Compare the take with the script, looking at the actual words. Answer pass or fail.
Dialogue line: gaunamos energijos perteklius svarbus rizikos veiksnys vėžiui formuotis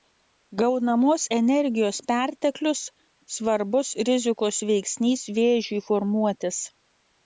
pass